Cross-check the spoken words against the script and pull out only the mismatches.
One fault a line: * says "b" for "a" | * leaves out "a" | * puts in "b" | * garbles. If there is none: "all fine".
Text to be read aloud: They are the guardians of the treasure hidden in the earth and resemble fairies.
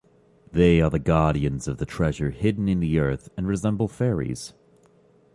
all fine